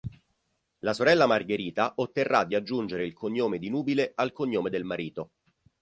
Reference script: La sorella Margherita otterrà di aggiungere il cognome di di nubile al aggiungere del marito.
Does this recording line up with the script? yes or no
no